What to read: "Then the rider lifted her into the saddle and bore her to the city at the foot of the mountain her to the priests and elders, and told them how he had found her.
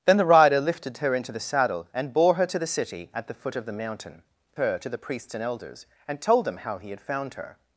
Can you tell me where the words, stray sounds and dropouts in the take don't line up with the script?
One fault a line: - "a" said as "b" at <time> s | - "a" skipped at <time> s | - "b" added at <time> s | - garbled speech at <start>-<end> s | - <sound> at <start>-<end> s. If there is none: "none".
none